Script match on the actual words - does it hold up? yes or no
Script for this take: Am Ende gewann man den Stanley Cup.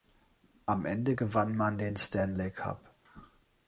yes